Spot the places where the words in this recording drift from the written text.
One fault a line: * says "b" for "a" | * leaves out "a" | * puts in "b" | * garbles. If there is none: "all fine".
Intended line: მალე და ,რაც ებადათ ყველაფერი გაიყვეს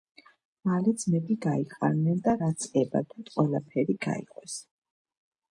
* puts in "ძმები გაიყარნენ"